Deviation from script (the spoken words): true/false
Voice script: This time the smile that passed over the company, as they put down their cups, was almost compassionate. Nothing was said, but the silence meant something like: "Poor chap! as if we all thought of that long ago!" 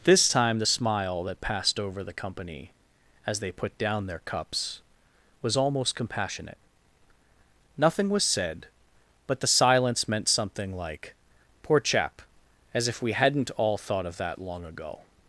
true